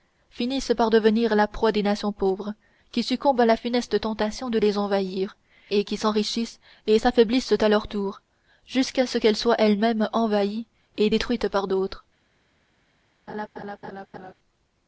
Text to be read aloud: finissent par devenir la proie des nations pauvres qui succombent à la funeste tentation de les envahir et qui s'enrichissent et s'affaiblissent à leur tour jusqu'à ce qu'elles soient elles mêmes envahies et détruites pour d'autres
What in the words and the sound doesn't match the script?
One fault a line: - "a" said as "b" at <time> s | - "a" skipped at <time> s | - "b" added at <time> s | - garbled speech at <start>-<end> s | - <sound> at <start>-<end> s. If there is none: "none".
- "pour" said as "par" at 11.5 s
- laugh at 13.3-14.3 s